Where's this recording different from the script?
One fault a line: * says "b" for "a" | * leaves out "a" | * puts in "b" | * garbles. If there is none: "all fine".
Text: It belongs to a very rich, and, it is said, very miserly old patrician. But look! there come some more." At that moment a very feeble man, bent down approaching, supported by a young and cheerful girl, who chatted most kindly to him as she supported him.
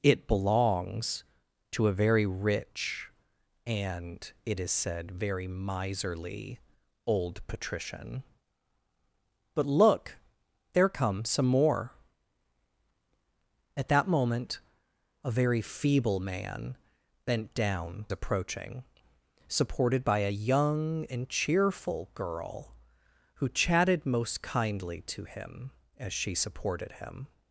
all fine